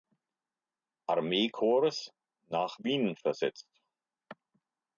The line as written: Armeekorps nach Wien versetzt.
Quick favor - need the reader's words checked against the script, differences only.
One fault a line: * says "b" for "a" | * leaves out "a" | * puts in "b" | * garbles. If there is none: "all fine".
all fine